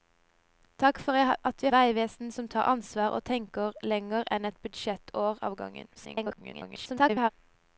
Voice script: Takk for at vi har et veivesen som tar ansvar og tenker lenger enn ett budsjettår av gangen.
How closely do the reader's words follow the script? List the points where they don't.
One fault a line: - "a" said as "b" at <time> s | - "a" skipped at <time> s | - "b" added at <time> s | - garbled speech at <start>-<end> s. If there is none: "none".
- "har et" skipped at 1.7 s
- garbled speech at 5.9-7.3 s